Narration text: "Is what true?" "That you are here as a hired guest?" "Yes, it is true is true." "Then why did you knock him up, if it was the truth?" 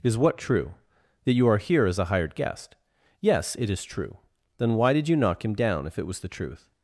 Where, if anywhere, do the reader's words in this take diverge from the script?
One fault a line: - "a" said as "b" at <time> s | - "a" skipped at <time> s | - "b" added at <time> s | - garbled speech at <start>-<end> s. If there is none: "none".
- "is true" skipped at 4.2 s
- "up" said as "down" at 5.5 s